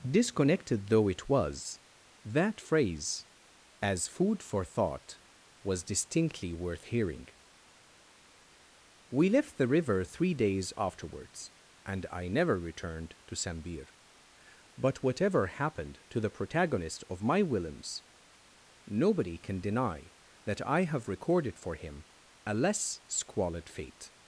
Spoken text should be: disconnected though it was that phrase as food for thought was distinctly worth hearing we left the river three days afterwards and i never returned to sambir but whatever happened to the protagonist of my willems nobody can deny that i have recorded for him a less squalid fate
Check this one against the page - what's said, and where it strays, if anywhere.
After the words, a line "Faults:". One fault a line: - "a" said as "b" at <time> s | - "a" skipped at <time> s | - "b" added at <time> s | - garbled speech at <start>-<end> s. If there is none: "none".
disconnected though it was that phrase as food for thought was distinctly worth hearing we left the river three days afterwards and i never returned to sambir but whatever happened to the protagonist of my willems nobody can deny that i have recorded for him a less squalid fate
Faults:
none